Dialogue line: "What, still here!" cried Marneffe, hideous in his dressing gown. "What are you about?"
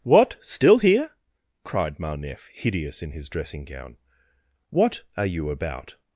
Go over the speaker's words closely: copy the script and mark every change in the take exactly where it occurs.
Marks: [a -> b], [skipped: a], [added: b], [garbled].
"What, still here!" cried Marneffe, hideous in his dressing gown. "What are you about?"